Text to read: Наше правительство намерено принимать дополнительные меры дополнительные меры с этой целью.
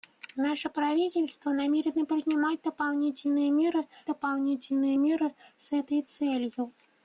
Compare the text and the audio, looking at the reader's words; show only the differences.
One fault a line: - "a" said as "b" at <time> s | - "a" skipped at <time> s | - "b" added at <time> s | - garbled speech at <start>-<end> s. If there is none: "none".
none